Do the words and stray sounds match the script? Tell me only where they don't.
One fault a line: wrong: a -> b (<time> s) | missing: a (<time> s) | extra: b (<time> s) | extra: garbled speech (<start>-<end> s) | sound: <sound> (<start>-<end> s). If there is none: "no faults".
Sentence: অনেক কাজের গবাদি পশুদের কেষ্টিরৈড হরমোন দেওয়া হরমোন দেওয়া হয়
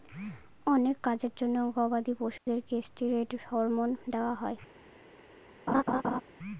extra: জন্য (1.4 s)
sound: dropout (2.4-2.5 s)
missing: হরমোন দেওয়া (4.3 s)
sound: laugh (5.7-6.2 s)